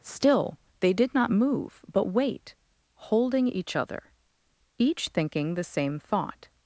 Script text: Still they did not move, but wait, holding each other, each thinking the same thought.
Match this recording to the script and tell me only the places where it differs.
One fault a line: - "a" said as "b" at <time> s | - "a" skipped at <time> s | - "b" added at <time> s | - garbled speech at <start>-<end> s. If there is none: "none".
none